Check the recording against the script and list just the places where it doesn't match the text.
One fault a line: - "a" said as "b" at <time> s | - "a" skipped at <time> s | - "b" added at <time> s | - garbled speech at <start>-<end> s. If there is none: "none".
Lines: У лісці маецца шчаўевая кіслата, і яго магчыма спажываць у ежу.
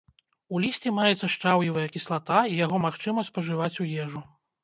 none